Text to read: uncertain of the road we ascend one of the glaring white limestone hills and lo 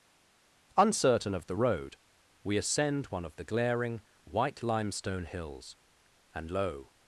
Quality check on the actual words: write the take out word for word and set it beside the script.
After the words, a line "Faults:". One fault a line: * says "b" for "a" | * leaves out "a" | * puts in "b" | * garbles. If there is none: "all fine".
uncertain of the road we ascend one of the glaring white limestone hills and lo
Faults:
all fine